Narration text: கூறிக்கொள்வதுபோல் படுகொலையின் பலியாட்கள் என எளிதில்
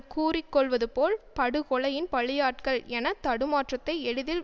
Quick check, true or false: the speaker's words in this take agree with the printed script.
false